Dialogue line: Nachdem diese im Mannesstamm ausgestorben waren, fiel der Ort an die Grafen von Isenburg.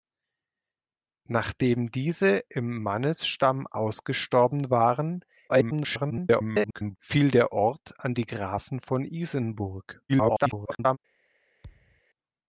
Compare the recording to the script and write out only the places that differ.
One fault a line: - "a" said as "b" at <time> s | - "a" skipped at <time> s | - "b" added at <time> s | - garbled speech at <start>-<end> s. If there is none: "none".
- garbled speech at 5.5-7.0 s
- garbled speech at 10.1-11.0 s